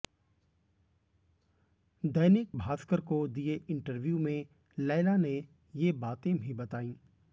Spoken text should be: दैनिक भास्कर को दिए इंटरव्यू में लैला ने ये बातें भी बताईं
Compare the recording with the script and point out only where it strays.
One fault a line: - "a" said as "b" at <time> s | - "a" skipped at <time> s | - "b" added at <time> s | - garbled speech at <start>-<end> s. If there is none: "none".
none